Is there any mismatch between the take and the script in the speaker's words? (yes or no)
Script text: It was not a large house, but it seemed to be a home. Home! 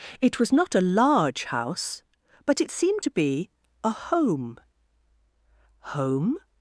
no